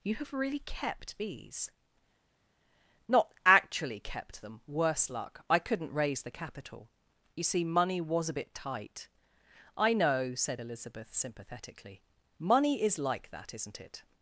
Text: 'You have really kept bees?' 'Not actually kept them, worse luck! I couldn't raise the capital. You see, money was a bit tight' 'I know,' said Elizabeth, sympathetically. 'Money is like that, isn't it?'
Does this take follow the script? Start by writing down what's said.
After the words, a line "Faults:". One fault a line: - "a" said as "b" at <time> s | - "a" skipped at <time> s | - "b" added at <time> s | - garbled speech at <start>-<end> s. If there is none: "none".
'You have really kept bees?' 'Not actually kept them, worse luck! I couldn't raise the capital. You see, money was a bit tight' 'I know,' said Elizabeth, sympathetically. 'Money is like that, isn't it?'
Faults:
none